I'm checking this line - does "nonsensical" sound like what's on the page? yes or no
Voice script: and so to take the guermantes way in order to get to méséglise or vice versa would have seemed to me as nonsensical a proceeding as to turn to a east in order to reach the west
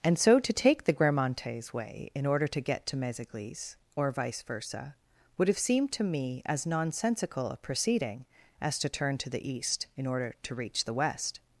yes